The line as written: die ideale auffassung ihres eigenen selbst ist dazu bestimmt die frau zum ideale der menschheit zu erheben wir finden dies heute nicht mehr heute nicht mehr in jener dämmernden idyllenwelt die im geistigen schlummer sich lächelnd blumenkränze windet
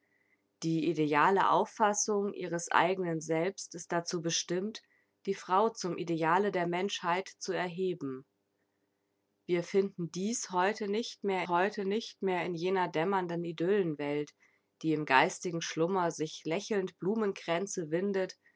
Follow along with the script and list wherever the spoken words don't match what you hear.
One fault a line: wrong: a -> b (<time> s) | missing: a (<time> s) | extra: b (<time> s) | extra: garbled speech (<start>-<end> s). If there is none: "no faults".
no faults